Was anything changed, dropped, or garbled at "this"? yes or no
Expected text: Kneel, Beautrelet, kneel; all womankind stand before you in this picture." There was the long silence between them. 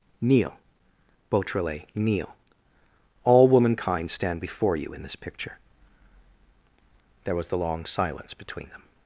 no